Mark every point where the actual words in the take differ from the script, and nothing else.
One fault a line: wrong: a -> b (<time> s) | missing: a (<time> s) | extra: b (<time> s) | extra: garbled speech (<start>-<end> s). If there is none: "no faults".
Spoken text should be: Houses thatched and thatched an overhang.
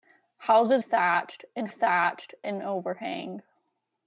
no faults